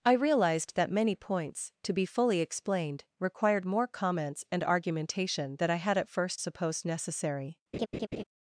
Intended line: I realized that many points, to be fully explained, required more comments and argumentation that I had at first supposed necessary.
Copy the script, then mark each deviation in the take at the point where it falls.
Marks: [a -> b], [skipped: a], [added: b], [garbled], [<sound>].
I realized that many points, to be fully explained, required more comments and argumentation [that -> than] I had at first supposed necessary. [laugh]